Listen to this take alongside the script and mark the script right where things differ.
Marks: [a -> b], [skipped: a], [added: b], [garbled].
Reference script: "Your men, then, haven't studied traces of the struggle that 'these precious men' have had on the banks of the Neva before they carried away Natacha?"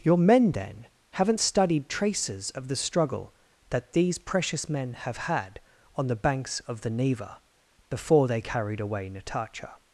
"Your men, then, haven't studied traces of the struggle that 'these precious men' have had on the banks of the Neva before they carried away Natacha?"